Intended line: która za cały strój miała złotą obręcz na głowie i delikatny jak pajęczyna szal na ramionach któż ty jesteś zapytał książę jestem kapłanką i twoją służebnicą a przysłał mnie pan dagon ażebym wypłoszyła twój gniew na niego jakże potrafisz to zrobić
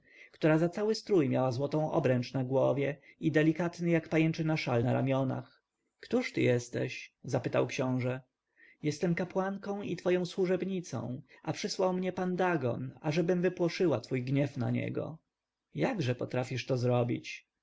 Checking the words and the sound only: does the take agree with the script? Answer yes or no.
yes